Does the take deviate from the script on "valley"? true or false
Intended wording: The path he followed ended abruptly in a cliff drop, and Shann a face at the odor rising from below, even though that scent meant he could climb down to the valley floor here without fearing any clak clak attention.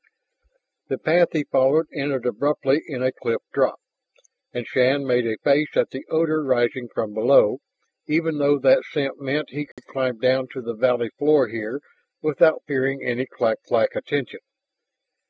false